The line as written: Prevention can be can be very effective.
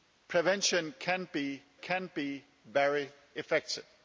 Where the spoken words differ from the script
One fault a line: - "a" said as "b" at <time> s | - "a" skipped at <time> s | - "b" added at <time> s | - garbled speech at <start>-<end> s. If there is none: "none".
none